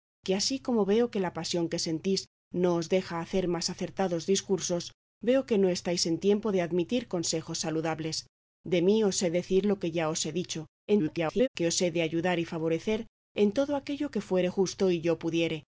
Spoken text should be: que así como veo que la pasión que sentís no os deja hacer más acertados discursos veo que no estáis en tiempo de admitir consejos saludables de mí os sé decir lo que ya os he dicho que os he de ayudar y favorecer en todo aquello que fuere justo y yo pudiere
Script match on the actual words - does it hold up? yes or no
no